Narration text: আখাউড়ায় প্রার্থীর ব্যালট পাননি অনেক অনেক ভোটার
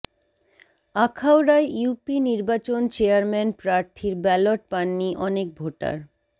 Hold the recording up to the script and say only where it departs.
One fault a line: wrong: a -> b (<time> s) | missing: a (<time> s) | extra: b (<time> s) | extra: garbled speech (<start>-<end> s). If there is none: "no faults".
extra: ইউপি নির্বাচন চেয়ারম্যান (1.7 s)
missing: অনেক (5.5 s)